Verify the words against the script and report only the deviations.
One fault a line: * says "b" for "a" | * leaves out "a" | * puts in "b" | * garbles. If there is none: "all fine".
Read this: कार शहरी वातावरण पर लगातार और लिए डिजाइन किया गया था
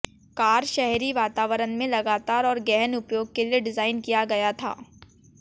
* says "में" for "पर"
* puts in "गहन उपयोग के"